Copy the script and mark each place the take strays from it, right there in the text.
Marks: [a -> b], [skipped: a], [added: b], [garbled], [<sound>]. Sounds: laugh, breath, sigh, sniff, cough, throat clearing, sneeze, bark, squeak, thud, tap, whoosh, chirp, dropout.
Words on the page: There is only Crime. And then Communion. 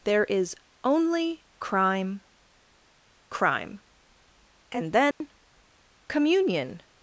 There is only Crime. [added: Crime] And then [dropout] Communion.